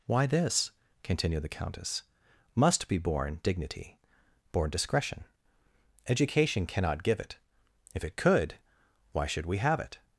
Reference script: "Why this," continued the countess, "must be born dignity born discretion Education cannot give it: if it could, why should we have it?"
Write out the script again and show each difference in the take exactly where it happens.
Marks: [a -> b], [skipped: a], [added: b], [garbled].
"Why this," continued the countess, "must be born dignity born discretion Education cannot give it: if it could, why should we have it?"